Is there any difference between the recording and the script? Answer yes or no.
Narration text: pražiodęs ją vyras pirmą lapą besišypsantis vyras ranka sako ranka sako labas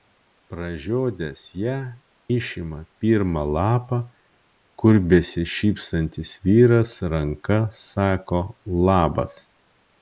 yes